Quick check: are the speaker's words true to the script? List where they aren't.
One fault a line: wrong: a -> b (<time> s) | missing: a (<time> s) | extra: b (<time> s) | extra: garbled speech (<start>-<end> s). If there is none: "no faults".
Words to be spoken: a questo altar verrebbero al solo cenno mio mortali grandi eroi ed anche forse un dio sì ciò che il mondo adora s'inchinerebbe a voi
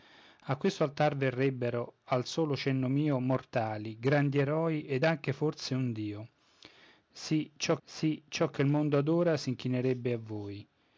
extra: sì ciò (7.8 s)